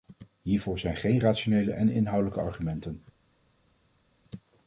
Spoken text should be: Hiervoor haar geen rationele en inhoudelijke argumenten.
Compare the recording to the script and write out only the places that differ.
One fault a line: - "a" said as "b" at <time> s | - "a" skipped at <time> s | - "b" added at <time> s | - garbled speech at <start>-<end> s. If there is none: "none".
- "haar" said as "zijn" at 0.8 s